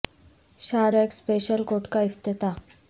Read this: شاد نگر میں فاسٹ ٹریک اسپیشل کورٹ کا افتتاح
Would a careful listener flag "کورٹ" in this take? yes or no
no